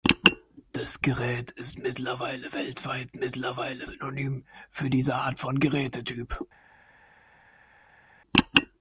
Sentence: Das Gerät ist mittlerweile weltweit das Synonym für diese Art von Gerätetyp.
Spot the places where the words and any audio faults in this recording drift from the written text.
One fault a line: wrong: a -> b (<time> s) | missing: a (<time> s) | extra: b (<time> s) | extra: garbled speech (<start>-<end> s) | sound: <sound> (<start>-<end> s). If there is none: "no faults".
wrong: das -> mittlerweile (3.1 s)